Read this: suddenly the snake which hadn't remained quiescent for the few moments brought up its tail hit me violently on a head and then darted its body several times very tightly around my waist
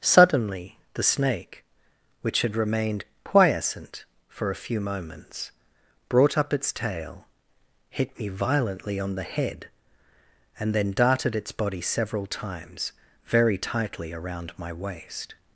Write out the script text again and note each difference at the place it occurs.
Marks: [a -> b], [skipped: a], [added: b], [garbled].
suddenly the snake which [hadn't -> had] remained quiescent for [the -> a] few moments brought up its tail hit me violently on [a -> the] head and then darted its body several times very tightly around my waist